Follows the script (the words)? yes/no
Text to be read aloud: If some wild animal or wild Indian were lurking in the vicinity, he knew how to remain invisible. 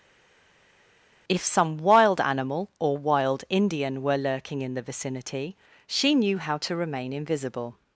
no